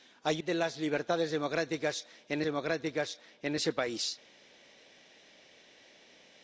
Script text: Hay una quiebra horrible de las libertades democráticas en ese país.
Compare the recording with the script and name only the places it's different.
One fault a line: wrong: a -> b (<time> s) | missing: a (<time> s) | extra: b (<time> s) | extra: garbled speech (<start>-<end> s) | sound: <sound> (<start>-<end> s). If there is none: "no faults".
missing: una quiebra horrible (0.4 s)
extra: democráticas en (2.4 s)